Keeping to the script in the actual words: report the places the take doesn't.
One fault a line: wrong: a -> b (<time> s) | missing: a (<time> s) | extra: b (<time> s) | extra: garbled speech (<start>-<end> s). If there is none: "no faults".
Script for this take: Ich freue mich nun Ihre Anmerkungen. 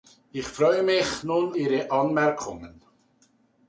no faults